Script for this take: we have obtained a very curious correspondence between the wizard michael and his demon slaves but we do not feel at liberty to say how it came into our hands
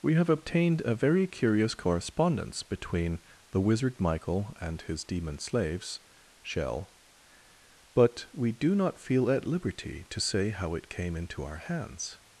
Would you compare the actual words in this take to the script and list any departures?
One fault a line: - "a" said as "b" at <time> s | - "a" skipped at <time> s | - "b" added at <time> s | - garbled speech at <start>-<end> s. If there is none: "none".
- "shell" added at 6.4 s